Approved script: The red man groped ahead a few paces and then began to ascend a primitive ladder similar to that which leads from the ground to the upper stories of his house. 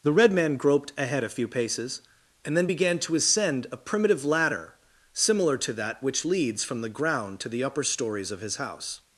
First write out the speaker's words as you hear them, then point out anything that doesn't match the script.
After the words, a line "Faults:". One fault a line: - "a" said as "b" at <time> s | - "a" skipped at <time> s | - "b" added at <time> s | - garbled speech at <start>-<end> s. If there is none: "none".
The red man groped ahead a few paces and then began to ascend a primitive ladder similar to that which leads from the ground to the upper stories of his house.
Faults:
none